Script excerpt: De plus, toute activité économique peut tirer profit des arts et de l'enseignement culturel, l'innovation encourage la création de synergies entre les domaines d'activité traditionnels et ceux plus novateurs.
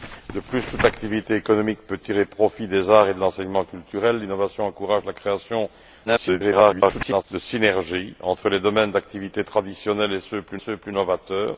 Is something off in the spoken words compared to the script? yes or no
yes